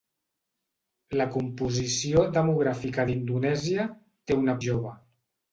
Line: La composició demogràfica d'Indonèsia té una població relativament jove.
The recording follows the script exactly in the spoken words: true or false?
false